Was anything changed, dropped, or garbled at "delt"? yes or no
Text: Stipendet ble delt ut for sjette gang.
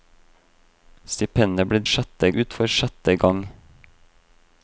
yes